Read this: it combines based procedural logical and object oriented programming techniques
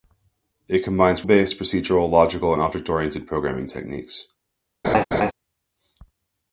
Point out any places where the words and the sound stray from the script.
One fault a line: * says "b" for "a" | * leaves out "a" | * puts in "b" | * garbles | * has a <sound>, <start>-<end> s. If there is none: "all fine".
* has a laugh, 4.8-5.3 s